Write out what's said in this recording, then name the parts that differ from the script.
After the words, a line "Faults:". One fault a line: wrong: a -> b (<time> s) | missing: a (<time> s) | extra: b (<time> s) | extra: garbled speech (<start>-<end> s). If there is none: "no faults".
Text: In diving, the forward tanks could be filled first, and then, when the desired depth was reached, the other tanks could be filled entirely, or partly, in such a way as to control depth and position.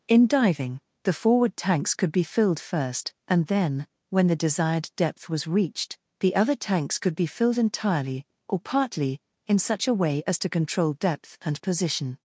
In diving, the forward tanks could be filled first, and then, when the desired depth was reached, the other tanks could be filled entirely, or partly, in such a way as to control depth and position.
Faults:
no faults